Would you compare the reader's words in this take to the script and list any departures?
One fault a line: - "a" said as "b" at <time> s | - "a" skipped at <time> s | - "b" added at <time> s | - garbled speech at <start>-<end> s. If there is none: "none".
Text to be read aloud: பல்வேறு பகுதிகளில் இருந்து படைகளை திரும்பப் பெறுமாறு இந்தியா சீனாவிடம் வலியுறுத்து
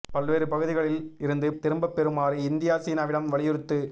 - "படைகளை" skipped at 1.5 s